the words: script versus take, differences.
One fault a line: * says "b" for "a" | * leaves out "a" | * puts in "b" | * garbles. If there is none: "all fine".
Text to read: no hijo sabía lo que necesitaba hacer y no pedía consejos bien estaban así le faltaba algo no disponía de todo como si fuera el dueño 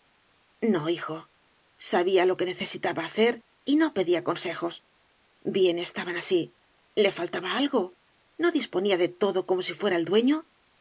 all fine